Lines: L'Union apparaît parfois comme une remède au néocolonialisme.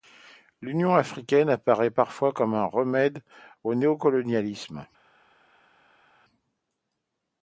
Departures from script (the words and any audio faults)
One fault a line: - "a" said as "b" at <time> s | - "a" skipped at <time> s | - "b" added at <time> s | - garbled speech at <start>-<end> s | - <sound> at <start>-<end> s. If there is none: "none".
- "africaine" added at 0.9 s
- "une" said as "un" at 2.5 s